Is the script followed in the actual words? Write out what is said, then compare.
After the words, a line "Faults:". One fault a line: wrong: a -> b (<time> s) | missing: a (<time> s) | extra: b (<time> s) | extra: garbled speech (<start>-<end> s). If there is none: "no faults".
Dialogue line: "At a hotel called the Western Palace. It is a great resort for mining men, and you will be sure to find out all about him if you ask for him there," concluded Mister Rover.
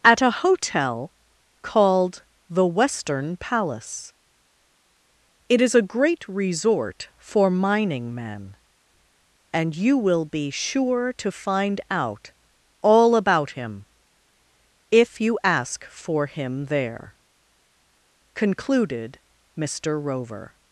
"At a hotel called the Western Palace. It is a great resort for mining men, and you will be sure to find out all about him if you ask for him there," concluded Mister Rover.
Faults:
no faults